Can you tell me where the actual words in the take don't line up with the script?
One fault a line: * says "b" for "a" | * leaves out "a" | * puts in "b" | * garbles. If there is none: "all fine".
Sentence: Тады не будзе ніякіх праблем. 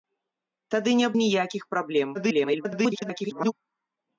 * leaves out "будзе"
* garbles